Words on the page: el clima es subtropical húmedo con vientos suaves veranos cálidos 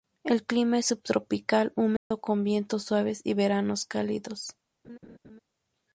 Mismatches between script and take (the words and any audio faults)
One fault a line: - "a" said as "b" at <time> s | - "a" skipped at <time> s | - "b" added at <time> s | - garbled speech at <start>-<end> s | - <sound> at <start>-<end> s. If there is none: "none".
- dropout at 2.0-2.1 s
- "y" added at 3.2 s
- laugh at 4.8-5.4 s